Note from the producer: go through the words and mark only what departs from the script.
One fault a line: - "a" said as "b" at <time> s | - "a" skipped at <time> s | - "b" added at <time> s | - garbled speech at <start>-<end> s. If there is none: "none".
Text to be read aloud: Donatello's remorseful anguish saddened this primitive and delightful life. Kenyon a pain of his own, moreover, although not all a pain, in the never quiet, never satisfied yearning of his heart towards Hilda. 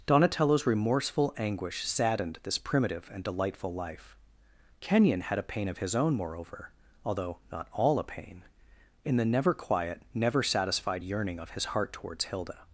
- "had" added at 5.2 s